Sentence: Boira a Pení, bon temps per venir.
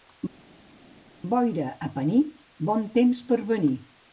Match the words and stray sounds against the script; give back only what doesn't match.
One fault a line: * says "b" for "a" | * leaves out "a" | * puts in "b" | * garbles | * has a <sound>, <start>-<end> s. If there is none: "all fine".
all fine